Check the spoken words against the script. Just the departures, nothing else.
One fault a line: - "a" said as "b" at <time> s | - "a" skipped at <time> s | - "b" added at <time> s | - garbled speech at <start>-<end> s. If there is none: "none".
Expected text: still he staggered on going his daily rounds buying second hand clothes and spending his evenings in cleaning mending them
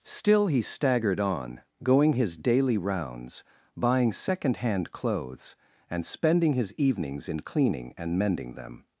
- "and" added at 8.0 s